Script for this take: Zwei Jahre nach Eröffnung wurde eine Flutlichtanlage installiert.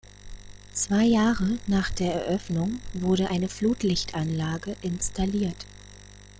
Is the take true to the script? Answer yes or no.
no